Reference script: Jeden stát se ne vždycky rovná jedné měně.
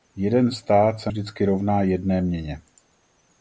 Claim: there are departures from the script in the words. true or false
true